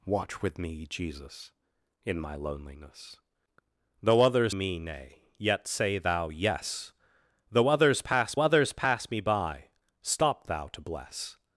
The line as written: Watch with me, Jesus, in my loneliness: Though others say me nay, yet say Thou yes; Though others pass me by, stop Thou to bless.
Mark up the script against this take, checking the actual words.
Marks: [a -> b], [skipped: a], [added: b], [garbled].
Watch with me, Jesus, in my loneliness: Though others [skipped: say] me nay, yet say Thou yes; Though others pass [added: others pass] me by, stop Thou to bless.